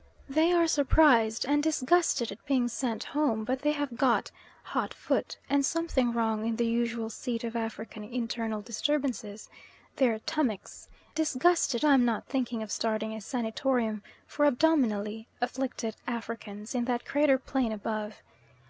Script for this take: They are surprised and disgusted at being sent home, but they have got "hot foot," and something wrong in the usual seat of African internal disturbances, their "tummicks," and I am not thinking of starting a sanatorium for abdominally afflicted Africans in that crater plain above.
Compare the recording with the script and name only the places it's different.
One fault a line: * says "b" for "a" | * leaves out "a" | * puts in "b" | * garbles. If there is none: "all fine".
* says "disgusted" for "and"